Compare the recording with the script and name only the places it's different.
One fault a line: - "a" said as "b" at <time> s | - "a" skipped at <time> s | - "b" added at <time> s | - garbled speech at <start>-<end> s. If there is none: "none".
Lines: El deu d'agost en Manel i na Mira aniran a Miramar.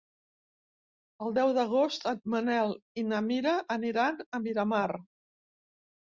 none